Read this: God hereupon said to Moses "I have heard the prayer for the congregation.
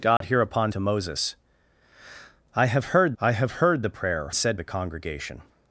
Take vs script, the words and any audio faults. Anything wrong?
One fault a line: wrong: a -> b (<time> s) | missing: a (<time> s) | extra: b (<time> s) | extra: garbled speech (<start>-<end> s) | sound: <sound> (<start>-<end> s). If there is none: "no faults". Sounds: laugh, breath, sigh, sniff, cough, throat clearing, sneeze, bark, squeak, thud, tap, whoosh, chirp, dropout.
sound: dropout (0.2-0.2 s)
missing: said (0.7 s)
extra: I have heard (3.2 s)
wrong: for -> said (4.3 s)